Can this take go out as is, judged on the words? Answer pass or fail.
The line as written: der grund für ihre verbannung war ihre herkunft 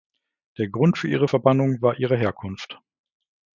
pass